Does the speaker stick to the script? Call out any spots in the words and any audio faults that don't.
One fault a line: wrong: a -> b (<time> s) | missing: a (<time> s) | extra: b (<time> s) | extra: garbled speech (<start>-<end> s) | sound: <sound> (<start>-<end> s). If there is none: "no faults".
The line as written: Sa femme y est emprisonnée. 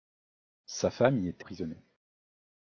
no faults